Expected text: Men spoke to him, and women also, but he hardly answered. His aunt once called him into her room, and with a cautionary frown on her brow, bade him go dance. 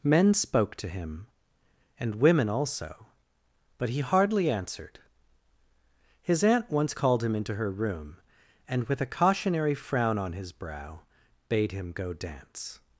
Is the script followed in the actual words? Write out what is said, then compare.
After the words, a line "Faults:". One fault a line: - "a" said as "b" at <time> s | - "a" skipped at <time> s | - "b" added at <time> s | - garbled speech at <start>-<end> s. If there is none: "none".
Men spoke to him, and women also, but he hardly answered. His aunt once called him into her room, and with a cautionary frown on his brow, bade him go dance.
Faults:
- "her" said as "his" at 10.3 s